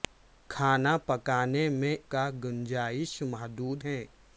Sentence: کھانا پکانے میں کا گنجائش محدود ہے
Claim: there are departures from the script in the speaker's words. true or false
false